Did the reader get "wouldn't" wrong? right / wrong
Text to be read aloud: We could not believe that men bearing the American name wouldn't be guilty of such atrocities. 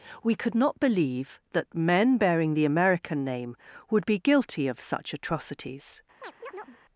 wrong